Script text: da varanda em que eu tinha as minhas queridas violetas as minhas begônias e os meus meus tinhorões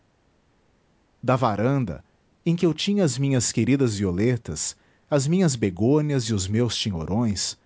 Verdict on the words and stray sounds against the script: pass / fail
fail